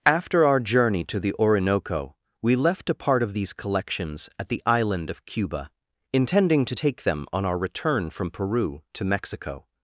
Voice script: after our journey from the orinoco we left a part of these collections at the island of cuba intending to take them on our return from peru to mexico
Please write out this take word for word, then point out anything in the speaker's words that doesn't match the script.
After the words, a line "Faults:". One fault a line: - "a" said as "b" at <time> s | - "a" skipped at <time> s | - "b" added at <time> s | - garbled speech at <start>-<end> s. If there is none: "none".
after our journey to the orinoco we left a part of these collections at the island of cuba intending to take them on our return from peru to mexico
Faults:
- "from" said as "to" at 1.0 s